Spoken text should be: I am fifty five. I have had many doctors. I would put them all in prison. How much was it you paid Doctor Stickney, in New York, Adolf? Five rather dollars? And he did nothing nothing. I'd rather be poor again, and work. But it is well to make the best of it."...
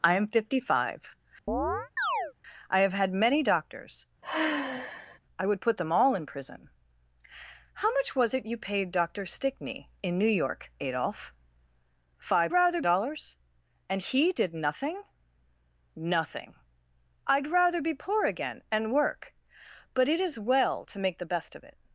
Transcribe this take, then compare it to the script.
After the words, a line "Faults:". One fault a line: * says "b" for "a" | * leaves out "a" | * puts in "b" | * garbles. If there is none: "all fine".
I am fifty five. I have had many doctors. I would put them all in prison. How much was it you paid Doctor Stickney, in New York, Adolf? Five rather dollars? And he did nothing nothing. I'd rather be poor again, and work. But it is well to make the best of it."...
Faults:
all fine